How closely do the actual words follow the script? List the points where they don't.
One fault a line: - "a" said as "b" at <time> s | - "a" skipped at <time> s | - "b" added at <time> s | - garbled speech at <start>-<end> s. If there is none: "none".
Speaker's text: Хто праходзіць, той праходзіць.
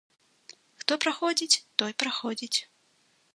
none